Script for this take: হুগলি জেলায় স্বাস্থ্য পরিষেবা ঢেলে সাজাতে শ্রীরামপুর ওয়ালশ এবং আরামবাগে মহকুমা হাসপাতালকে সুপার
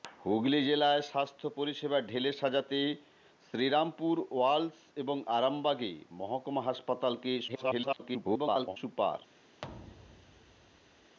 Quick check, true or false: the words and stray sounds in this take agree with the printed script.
false